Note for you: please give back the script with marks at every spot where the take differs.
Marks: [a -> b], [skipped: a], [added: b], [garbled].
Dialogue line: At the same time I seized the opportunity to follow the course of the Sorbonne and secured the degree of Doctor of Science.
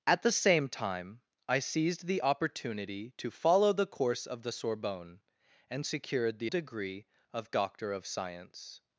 At the same time I seized the opportunity to follow the course of the Sorbonne and secured the degree of Doctor of Science.